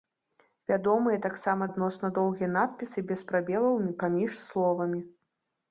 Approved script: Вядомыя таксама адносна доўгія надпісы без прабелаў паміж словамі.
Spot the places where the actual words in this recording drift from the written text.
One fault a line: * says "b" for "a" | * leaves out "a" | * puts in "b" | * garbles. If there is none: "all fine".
all fine